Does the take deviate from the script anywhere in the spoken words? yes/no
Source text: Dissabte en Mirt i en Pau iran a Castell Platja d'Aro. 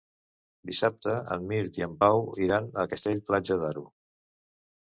no